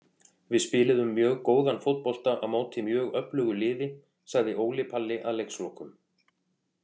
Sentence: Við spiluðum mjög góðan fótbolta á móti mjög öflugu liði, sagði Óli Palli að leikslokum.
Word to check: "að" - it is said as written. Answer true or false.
true